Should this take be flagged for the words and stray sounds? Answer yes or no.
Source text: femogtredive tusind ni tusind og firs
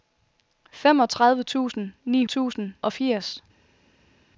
no